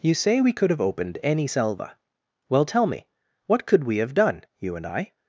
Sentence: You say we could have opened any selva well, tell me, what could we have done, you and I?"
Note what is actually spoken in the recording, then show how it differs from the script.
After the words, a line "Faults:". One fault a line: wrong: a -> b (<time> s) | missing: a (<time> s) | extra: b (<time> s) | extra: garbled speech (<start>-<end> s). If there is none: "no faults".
You say we could have opened any selva well, tell me, what could we have done, you and I?"
Faults:
no faults